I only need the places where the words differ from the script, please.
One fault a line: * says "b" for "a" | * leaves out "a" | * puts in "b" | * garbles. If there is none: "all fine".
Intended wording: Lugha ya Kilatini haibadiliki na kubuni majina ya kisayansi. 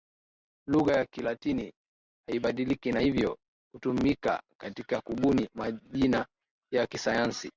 * puts in "hivyo hutumika katika"